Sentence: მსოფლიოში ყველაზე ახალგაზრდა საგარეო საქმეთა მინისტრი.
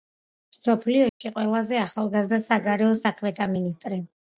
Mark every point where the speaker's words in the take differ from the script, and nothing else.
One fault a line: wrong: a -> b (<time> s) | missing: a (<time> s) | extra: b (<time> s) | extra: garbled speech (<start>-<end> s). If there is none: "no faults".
no faults